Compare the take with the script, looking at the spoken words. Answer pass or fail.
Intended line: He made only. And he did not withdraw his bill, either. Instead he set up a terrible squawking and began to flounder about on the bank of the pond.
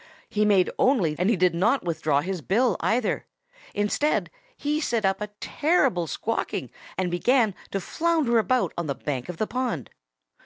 pass